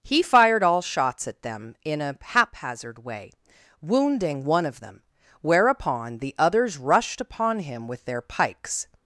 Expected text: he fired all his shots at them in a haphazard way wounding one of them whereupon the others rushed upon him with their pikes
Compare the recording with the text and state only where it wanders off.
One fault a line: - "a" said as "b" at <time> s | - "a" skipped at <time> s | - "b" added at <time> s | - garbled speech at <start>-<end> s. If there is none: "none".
- "his" skipped at 0.8 s